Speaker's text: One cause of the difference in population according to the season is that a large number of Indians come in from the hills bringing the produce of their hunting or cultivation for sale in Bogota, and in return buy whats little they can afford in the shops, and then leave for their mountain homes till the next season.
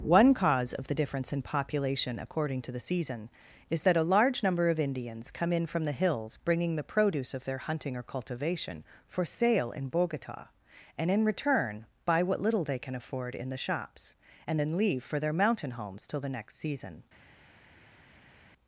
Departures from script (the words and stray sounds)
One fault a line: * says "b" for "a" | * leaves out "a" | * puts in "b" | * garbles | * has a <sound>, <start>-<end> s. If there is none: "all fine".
* says "what" for "whats"